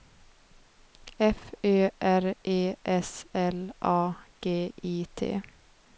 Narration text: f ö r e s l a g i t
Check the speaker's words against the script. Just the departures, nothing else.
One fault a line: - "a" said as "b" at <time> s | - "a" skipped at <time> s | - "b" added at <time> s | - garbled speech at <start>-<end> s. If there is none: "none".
none